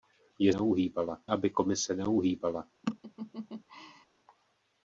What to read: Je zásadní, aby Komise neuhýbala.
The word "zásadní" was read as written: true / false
false